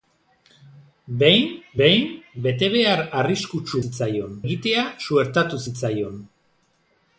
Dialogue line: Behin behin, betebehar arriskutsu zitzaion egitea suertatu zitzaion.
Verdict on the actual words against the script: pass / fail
pass